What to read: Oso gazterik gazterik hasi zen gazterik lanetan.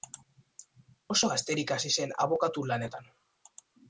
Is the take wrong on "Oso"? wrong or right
right